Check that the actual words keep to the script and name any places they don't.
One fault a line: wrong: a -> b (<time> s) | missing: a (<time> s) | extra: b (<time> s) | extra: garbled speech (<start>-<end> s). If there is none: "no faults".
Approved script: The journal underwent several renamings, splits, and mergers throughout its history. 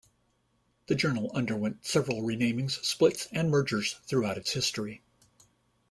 no faults